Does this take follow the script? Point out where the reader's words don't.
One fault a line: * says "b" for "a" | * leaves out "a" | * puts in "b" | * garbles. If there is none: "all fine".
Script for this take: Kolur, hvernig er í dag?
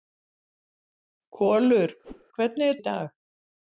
all fine